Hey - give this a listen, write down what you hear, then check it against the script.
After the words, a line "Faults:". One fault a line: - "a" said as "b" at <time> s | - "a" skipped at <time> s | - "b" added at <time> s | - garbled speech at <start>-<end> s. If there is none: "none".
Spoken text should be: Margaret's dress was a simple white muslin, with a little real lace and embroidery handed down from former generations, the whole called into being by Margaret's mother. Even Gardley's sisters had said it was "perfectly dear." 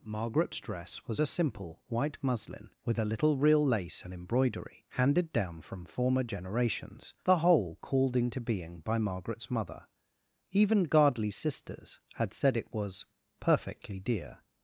Margaret's dress was a simple white muslin, with a little real lace and embroidery handed down from former generations, the whole called into being by Margaret's mother. Even Gardley's sisters had said it was "perfectly dear."
Faults:
none